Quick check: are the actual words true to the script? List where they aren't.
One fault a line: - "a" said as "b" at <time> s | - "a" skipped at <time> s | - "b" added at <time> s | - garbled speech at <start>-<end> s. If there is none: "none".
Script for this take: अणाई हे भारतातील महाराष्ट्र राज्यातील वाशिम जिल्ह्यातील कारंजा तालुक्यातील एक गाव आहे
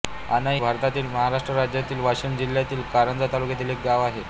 - "हे" skipped at 0.6 s